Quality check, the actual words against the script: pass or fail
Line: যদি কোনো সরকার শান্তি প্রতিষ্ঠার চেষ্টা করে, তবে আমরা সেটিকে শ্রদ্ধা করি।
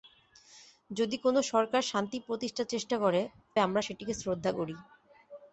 fail